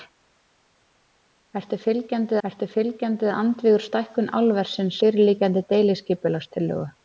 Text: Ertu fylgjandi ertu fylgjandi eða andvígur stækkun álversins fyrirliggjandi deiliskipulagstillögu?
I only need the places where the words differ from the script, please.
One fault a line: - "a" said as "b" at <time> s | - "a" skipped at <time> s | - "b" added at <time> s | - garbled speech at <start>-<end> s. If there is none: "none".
none